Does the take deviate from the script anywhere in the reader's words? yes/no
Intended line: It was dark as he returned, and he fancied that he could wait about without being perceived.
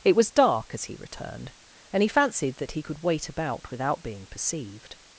no